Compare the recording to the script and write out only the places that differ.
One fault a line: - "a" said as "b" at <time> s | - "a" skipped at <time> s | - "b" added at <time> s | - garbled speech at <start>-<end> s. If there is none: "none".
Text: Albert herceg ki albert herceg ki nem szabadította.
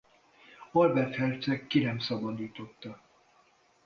- "albert herceg ki" skipped at 1.8 s